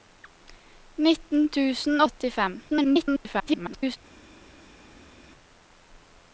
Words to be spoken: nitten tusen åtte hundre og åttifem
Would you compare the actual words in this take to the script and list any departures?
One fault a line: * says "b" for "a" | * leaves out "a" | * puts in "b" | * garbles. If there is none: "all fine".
* leaves out "åtte hundre"
* garbles